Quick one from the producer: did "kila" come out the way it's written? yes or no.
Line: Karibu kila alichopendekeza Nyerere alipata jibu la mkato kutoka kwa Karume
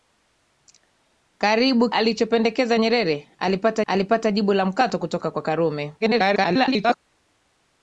no